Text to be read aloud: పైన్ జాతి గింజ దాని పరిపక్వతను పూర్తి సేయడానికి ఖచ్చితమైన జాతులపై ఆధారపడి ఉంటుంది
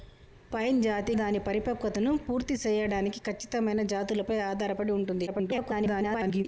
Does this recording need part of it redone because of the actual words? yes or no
yes